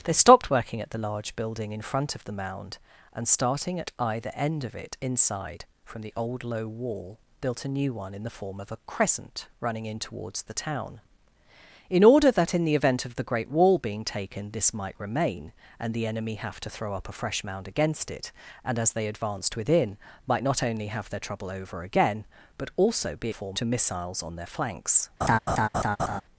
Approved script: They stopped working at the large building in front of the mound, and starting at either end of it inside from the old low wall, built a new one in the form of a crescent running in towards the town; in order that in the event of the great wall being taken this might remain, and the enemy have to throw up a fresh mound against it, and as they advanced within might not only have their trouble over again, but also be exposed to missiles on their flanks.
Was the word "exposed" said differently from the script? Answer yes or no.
yes